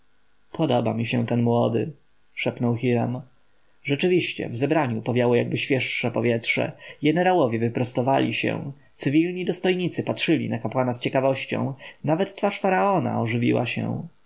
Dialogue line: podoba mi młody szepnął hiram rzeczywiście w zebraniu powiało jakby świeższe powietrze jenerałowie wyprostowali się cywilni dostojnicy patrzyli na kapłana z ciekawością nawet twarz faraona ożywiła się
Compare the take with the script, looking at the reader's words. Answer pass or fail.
fail